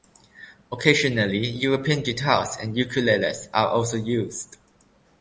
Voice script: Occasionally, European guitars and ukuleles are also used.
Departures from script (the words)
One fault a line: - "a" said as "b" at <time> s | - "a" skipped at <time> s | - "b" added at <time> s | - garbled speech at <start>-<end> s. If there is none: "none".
none